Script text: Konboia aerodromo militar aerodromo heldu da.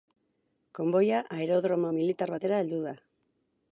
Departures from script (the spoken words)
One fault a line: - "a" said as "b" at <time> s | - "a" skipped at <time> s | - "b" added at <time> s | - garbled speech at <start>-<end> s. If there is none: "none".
- "aerodromo" said as "batera" at 2.3 s